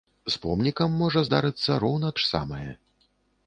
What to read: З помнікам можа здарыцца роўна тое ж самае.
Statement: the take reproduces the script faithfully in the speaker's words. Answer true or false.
false